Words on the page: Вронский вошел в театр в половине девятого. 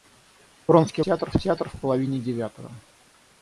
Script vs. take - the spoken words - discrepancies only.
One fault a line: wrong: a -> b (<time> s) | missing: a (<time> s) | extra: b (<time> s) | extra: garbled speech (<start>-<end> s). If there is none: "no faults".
wrong: вошел -> театр (1.0 s)